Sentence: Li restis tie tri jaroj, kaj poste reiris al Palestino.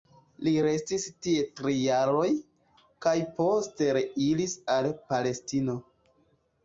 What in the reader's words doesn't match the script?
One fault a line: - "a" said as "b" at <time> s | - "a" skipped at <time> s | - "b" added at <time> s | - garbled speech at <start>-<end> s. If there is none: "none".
none